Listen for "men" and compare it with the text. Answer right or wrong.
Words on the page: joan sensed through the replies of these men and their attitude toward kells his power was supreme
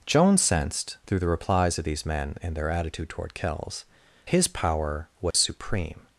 right